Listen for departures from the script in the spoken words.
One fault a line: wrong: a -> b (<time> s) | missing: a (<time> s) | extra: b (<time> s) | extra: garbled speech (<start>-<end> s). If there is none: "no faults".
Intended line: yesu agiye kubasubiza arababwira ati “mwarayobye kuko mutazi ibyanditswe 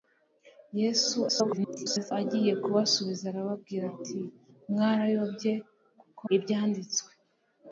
extra: garbled speech (1.3-2.1 s)
missing: mutazi (6.2 s)